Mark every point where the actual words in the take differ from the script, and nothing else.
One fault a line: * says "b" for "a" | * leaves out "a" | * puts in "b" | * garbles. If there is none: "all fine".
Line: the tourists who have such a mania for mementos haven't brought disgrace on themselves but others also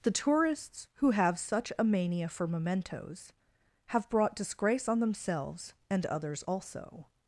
* says "have" for "haven't"
* says "and" for "but"